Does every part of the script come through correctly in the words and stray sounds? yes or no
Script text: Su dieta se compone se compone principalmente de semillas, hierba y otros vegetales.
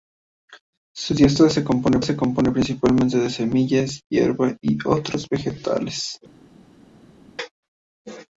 yes